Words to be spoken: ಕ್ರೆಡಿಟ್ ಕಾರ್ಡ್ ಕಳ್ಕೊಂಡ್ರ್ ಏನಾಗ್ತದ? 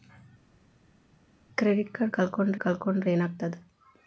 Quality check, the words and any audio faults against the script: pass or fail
fail